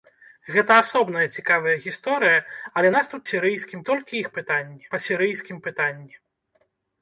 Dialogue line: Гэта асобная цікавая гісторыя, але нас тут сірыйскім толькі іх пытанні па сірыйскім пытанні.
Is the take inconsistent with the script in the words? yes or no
no